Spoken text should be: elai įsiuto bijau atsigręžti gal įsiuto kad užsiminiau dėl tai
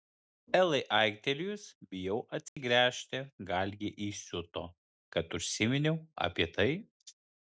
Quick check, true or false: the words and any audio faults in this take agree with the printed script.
false